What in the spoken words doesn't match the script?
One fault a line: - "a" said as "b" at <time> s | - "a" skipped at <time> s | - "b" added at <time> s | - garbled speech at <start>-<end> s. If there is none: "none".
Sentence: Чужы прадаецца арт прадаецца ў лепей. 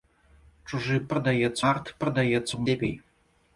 none